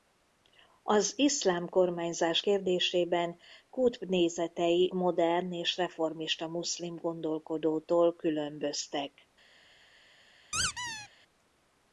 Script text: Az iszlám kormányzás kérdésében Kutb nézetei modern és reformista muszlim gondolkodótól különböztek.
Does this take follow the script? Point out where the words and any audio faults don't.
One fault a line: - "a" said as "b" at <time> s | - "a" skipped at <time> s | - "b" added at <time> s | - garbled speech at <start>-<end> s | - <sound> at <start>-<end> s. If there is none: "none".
- squeak at 10.5-11.1 s